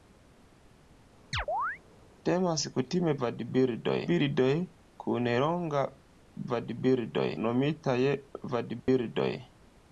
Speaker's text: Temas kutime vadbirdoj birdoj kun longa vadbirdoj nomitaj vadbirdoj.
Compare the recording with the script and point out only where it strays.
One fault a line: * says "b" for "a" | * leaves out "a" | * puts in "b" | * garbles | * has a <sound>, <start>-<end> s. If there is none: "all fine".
* has a chirp, 1.3-1.8 s
* has a dropout, 8.8-8.9 s